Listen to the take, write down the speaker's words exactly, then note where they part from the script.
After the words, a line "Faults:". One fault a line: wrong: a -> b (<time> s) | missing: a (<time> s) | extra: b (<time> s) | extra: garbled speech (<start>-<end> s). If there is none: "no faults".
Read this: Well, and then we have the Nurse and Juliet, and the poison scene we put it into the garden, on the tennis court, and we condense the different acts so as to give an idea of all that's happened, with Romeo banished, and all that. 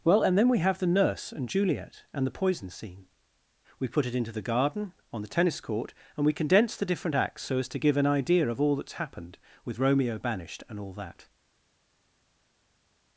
Well, and then we have the Nurse and Juliet, and the poison scene we put it into the garden, on the tennis court, and we condense the different acts so as to give an idea of all that's happened, with Romeo banished, and all that.
Faults:
no faults